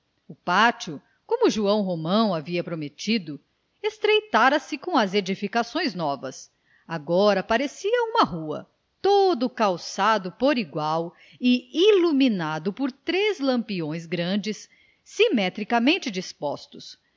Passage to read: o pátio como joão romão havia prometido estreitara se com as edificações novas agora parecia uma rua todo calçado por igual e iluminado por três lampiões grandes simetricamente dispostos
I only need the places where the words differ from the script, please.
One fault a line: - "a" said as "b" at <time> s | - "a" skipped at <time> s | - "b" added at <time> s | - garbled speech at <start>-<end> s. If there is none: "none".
none